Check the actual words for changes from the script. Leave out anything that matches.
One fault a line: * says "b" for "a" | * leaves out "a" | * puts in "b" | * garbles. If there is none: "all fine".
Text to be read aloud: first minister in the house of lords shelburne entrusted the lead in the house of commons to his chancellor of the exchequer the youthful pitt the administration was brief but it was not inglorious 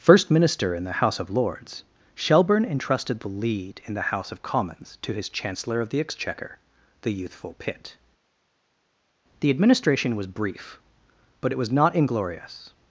all fine